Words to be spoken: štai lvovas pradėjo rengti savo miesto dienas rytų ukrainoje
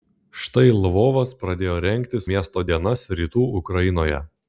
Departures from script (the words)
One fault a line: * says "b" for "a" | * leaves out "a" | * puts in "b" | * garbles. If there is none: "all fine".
* leaves out "savo"